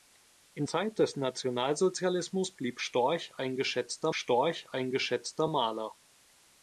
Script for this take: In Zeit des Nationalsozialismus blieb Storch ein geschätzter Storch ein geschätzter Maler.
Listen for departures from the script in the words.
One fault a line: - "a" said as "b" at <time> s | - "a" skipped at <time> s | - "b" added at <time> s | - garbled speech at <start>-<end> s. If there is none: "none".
none